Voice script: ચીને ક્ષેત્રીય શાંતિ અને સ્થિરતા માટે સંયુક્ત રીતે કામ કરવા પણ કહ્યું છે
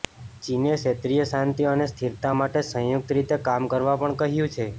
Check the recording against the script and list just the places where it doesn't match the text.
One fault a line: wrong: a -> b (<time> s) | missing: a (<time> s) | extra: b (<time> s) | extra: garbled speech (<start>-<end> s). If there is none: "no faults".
no faults